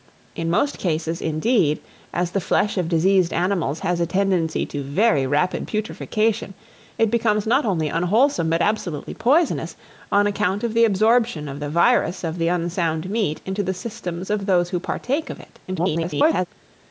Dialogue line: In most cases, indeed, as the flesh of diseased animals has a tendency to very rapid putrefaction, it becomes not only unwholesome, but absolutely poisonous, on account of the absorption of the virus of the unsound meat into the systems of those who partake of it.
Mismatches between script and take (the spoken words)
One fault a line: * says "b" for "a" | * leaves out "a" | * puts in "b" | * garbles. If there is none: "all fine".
* garbles